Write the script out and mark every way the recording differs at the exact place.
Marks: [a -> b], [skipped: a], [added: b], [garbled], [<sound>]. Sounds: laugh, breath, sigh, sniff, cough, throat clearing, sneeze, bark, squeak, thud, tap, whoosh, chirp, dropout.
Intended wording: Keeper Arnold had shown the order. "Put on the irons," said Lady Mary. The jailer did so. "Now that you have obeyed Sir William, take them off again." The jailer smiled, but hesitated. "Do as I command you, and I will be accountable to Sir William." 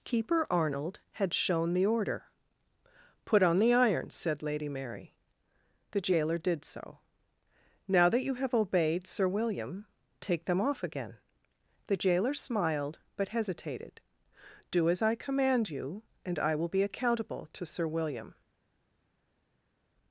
Keeper Arnold had shown the order. "Put on the irons," said Lady Mary. The jailer did so. "Now that you have obeyed Sir William, take them off again." The jailer smiled, but hesitated. "Do as I command you, and I will be accountable to Sir William."